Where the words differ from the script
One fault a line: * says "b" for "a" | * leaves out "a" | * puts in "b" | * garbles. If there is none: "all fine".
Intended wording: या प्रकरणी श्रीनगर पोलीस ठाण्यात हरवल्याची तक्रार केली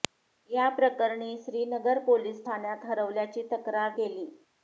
all fine